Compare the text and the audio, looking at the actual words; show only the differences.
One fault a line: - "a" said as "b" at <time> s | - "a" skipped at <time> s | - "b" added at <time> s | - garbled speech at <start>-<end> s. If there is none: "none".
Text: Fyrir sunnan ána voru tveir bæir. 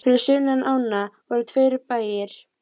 none